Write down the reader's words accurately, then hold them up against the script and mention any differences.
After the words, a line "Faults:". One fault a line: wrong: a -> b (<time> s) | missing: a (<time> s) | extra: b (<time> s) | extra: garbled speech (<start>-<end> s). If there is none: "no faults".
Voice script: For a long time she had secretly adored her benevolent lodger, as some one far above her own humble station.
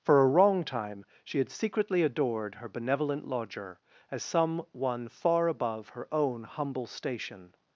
For a wrong time she had secretly adored her benevolent lodger, as some one far above her own humble station.
Faults:
wrong: long -> wrong (0.3 s)